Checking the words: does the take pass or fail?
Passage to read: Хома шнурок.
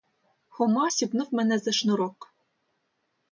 fail